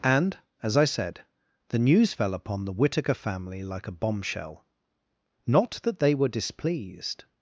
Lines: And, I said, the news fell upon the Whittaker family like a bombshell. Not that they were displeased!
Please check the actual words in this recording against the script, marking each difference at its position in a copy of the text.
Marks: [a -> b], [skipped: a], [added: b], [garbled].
And, [added: as] I said, the news fell upon the Whittaker family like a bombshell. Not that they were displeased!